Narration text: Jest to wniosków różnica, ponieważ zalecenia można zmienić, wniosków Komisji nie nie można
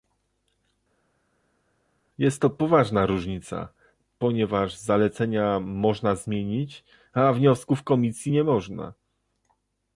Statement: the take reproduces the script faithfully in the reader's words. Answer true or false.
false